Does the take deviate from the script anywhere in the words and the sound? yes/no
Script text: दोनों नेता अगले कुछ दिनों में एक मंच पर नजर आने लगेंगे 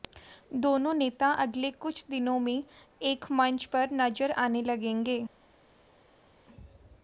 no